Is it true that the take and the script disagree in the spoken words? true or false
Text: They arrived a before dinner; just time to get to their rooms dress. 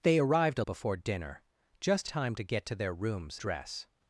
false